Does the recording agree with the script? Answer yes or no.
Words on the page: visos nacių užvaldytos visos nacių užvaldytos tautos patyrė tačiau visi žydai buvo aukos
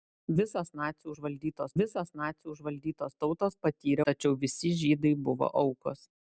yes